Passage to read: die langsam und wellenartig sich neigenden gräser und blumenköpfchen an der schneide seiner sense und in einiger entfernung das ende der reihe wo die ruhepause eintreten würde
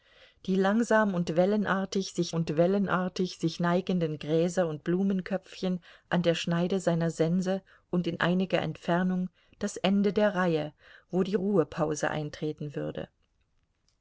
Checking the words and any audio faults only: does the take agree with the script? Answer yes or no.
no